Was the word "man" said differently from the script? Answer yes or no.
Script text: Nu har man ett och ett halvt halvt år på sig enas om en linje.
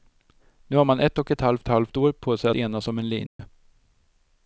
no